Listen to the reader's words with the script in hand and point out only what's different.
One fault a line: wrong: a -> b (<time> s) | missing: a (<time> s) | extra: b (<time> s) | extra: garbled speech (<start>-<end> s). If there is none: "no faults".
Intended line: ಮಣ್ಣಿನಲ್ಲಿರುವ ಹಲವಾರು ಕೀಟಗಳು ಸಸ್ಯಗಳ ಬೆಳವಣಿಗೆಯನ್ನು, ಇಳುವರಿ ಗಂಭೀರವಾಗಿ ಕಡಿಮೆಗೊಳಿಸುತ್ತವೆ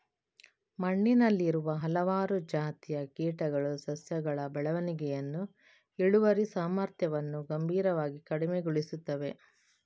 extra: ಜಾತಿಯ (2.5 s)
extra: ಸಾಮರ್ಥ್ಯವನ್ನು (6.5 s)